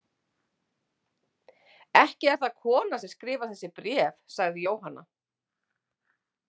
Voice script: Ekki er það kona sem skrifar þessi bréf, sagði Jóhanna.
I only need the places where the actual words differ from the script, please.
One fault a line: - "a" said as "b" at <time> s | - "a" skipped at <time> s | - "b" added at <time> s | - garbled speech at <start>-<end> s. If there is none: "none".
none